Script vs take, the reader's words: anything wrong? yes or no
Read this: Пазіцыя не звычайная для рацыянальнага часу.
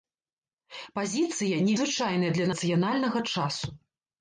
no